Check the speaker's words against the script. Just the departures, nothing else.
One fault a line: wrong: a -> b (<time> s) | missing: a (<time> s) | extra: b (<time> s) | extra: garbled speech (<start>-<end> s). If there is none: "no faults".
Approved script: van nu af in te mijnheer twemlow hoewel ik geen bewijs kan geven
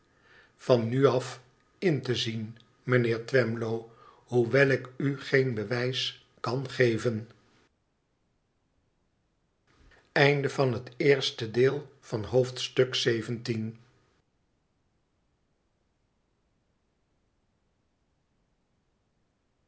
extra: zien (2.1 s)
extra: u (5.0 s)